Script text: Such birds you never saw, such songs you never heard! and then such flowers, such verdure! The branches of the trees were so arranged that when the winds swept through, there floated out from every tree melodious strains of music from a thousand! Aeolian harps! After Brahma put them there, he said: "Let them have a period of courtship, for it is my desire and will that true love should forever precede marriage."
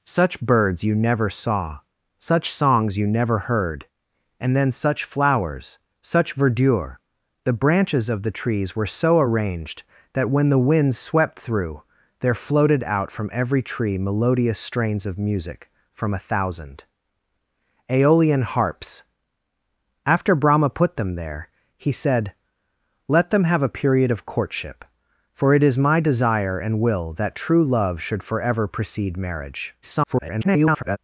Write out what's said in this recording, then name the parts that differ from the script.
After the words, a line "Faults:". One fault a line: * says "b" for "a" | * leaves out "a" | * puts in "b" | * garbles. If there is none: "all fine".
Such birds you never saw, such songs you never heard! and then such flowers, such verdure! The branches of the trees were so arranged that when the winds swept through, there floated out from every tree melodious strains of music from a thousand! Aeolian harps! After Brahma put them there, he said: "Let them have a period of courtship, for it is my desire and will that true love should forever precede marriage." [garbled]
Faults:
* garbles